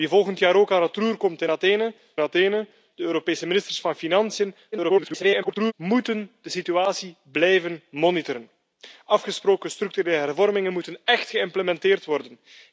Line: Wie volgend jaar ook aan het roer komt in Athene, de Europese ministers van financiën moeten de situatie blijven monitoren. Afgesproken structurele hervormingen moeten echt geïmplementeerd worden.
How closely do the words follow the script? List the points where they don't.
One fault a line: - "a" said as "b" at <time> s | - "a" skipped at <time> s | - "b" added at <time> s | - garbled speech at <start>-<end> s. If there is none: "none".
- "Athene" added at 2.2 s
- garbled speech at 4.7-5.7 s